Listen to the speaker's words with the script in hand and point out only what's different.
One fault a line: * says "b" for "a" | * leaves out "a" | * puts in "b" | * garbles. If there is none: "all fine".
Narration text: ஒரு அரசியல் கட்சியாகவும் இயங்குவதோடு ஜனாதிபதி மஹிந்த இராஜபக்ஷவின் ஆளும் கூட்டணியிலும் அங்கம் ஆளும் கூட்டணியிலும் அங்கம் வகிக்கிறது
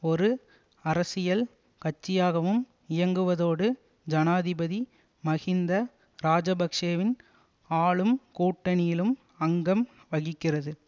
* leaves out "ஆளும் கூட்டணியிலும் அங்கம்"